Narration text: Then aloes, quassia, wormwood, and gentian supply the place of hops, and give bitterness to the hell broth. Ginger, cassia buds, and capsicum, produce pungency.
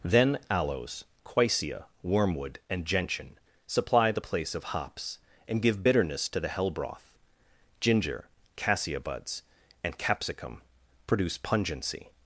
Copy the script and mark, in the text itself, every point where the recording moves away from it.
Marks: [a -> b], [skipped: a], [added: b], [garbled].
Then aloes, quassia, wormwood, and gentian supply the place of hops, and give bitterness to the hell broth. Ginger, cassia buds, and capsicum, produce pungency.